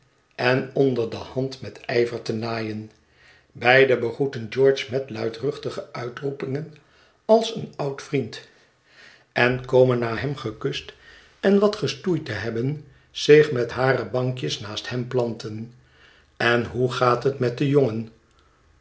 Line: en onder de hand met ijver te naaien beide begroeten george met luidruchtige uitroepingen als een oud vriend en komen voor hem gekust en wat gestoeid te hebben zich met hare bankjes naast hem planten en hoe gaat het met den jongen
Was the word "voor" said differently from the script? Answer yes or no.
yes